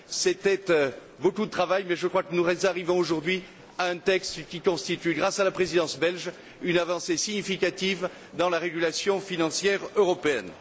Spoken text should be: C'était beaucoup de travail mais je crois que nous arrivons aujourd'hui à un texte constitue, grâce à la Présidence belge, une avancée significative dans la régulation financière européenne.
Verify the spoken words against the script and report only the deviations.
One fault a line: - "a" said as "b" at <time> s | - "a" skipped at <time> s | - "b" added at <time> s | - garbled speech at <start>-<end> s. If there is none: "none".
- "qui" added at 4.5 s